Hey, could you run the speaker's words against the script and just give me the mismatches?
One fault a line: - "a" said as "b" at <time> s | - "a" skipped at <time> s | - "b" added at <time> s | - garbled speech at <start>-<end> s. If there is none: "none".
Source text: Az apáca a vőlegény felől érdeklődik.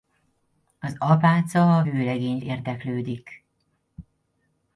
- "felől" skipped at 2.4 s